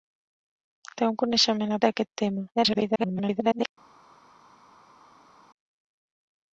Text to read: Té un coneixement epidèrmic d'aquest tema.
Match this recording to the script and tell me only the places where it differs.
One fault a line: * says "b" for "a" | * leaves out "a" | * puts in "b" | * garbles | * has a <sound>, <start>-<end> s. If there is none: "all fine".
* leaves out "epidèrmic"
* garbles